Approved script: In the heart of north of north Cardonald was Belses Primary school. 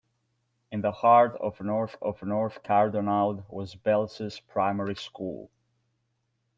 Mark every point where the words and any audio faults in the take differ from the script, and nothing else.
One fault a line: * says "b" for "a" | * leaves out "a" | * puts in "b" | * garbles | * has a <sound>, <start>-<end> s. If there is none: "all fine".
all fine